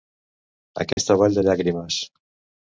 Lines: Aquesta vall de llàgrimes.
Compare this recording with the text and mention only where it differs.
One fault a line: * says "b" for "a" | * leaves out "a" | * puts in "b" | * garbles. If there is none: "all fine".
all fine